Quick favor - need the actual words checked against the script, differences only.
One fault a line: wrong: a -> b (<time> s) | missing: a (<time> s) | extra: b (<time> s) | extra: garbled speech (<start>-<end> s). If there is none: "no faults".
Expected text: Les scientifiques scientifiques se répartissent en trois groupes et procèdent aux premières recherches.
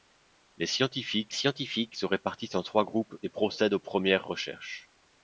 no faults